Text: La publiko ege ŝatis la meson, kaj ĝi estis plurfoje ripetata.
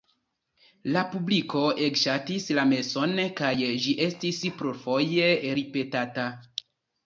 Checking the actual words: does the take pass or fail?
pass